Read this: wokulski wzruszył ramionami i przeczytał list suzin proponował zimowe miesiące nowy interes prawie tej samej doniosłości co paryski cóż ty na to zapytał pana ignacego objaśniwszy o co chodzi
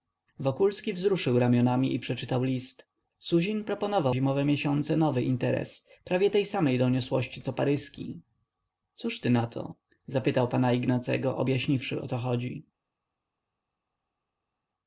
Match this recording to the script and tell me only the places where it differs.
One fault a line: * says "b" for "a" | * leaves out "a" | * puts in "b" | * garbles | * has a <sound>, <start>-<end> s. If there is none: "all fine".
all fine